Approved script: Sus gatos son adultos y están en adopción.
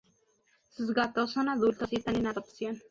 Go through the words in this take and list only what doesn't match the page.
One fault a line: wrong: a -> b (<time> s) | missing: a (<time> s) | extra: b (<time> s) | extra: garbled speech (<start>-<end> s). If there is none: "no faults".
no faults